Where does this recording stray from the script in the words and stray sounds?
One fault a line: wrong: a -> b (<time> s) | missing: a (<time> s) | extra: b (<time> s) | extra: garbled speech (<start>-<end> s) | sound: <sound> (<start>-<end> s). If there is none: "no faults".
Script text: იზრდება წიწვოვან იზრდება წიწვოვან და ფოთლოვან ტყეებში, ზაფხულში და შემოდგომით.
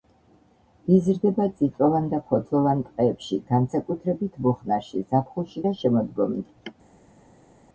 missing: იზრდება წიწვოვან (2.1 s)
extra: განსაკუთრებით მუხნარში (3.5 s)